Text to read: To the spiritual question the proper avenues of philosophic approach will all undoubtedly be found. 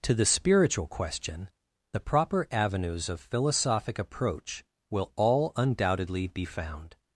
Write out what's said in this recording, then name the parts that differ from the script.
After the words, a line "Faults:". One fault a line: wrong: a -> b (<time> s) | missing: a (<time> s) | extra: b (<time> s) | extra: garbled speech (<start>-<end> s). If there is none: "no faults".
To the spiritual question the proper avenues of philosophic approach will all undoubtedly be found.
Faults:
no faults